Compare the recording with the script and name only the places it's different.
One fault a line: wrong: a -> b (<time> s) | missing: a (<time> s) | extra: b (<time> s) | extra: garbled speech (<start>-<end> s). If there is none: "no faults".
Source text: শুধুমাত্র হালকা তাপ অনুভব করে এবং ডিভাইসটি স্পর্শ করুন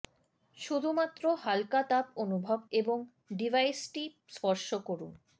missing: করে (2.6 s)